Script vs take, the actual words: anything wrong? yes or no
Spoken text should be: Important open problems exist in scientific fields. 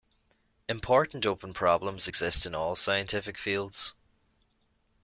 yes